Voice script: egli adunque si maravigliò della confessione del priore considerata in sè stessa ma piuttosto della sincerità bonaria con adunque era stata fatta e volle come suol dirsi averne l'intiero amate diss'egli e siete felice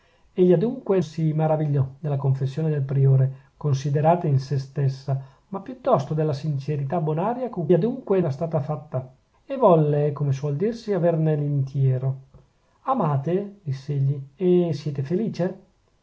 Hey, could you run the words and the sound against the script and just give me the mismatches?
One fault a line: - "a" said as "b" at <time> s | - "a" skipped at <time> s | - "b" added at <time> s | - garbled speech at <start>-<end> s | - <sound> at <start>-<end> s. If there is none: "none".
none